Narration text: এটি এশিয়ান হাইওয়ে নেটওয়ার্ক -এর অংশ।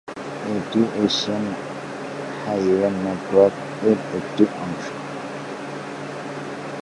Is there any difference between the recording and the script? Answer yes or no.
yes